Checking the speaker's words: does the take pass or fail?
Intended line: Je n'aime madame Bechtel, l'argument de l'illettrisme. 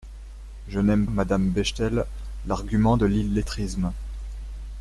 pass